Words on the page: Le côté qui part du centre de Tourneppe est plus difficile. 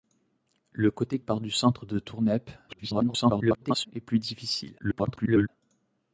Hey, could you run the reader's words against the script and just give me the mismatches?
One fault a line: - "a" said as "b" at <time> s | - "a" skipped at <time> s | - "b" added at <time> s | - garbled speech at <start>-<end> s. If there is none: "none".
- "qui" skipped at 1.2 s
- garbled speech at 2.7-3.9 s
- garbled speech at 4.8-5.5 s